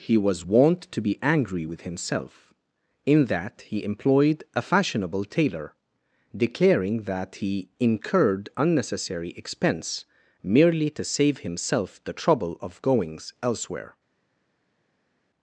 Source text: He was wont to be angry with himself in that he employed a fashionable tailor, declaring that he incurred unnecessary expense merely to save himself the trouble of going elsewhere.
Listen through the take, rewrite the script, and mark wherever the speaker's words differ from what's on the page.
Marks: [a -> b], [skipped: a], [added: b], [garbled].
He was wont to be angry with himself in that he employed a fashionable tailor, declaring that he incurred unnecessary expense merely to save himself the trouble of [going -> goings] elsewhere.